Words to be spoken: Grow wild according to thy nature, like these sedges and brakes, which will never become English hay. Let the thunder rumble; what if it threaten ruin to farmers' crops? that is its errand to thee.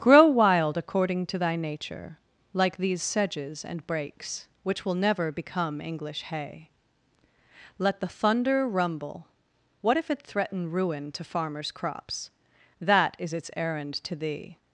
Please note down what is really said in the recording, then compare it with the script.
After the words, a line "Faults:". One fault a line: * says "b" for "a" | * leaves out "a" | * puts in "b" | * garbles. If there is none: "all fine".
Grow wild according to thy nature, like these sedges and brakes, which will never become English hay. Let the thunder rumble; what if it threaten ruin to farmers' crops? that is its errand to thee.
Faults:
all fine